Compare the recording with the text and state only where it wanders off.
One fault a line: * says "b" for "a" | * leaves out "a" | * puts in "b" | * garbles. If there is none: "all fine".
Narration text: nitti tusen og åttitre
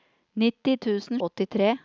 all fine